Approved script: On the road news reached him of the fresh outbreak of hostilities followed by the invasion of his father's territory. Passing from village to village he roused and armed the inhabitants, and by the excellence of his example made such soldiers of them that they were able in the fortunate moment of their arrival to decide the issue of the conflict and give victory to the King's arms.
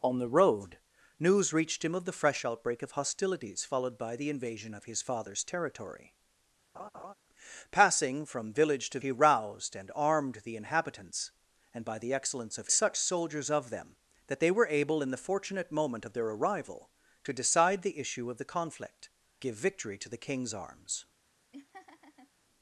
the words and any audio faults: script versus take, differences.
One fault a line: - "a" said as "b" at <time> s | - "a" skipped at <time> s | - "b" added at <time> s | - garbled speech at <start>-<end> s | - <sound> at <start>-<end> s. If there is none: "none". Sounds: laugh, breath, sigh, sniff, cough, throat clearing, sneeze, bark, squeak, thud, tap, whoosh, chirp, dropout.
- laugh at 6.7-7.1 s
- "village" skipped at 9.0 s
- "his example made" skipped at 12.7 s
- "and" skipped at 19.1 s
- laugh at 21.5-22.3 s